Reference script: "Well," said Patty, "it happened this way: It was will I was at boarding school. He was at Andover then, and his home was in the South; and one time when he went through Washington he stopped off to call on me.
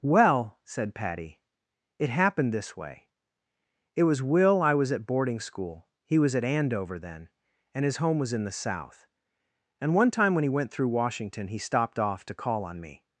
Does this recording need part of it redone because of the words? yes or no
no